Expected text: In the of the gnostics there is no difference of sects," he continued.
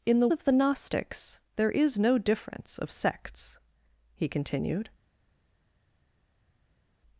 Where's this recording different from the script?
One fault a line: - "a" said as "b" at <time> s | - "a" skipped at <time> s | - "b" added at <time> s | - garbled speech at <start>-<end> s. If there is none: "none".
none